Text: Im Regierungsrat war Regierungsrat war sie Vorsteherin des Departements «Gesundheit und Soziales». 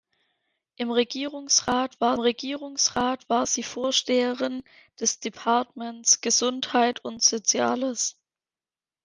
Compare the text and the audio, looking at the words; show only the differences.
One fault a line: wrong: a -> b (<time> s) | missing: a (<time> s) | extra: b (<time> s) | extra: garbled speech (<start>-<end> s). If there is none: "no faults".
no faults